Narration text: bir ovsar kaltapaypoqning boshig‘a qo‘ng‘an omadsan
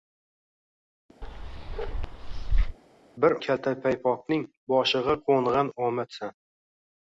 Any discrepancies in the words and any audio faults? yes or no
yes